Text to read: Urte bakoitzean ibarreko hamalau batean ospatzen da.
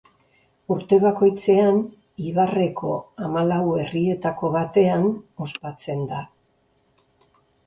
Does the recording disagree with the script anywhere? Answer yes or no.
yes